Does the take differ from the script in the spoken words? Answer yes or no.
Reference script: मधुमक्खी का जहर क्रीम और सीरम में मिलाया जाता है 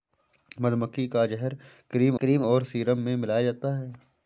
yes